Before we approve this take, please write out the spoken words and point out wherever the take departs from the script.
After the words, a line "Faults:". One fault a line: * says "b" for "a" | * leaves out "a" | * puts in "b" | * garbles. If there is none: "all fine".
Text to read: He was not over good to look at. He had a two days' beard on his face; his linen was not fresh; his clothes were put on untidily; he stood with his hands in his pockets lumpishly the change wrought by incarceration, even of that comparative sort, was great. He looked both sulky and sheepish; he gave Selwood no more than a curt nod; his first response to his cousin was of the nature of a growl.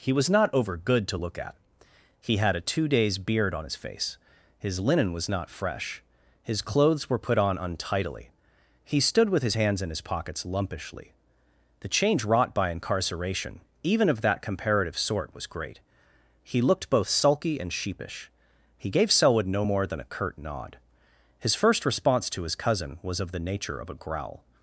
He was not over good to look at. He had a two days' beard on his face; his linen was not fresh; his clothes were put on untidily; he stood with his hands in his pockets lumpishly the change wrought by incarceration, even of that comparative sort, was great. He looked both sulky and sheepish; he gave Selwood no more than a curt nod; his first response to his cousin was of the nature of a growl.
Faults:
all fine